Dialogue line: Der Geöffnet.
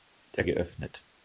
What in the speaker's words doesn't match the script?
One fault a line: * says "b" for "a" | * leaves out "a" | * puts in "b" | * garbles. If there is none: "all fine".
all fine